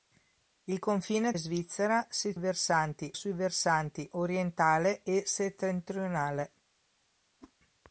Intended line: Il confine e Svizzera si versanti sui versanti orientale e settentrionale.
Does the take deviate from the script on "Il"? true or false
false